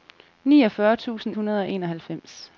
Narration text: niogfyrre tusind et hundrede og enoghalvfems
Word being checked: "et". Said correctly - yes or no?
no